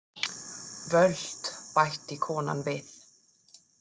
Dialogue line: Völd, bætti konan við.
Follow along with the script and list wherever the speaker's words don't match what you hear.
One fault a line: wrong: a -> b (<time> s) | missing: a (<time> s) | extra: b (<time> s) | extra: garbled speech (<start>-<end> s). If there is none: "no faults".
no faults